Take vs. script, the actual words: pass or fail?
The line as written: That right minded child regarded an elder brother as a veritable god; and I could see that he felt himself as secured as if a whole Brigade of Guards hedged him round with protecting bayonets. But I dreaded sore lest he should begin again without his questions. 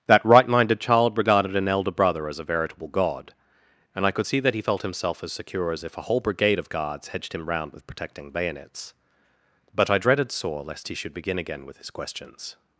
fail